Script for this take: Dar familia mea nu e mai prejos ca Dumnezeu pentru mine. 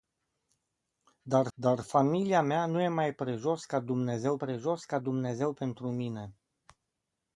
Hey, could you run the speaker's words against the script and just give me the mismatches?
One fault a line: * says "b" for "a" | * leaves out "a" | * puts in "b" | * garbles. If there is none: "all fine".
* puts in "dar"
* puts in "prejos ca Dumnezeu"